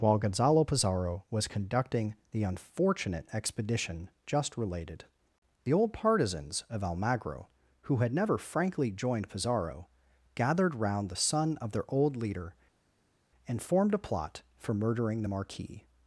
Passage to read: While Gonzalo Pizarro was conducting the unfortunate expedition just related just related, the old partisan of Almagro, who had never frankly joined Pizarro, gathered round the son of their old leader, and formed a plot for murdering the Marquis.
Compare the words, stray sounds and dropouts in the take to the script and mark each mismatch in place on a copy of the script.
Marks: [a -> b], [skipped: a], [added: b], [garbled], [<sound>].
While Gonzalo Pizarro was conducting the unfortunate expedition just related [skipped: just related,] the old [partisan -> partisans] of Almagro, who had never frankly joined Pizarro, gathered round the son of their old leader, and formed a plot for murdering the Marquis.